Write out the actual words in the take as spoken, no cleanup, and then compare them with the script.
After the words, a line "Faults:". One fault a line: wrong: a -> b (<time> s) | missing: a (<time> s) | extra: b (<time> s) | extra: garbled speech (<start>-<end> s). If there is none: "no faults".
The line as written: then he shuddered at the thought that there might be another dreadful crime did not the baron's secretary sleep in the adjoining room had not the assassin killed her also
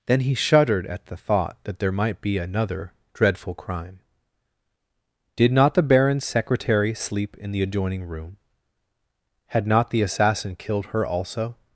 then he shuddered at the thought that there might be another dreadful crime did not the baron's secretary sleep in the adjoining room had not the assassin killed her also
Faults:
no faults